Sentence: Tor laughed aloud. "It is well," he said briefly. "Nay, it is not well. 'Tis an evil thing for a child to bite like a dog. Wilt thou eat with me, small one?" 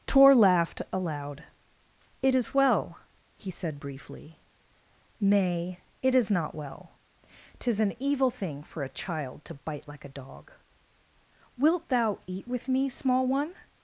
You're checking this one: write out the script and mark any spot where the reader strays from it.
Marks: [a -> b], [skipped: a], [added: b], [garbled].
Tor laughed aloud. "It is well," he said briefly. "Nay, it is not well. 'Tis an evil thing for a child to bite like a dog. Wilt thou eat with me, small one?"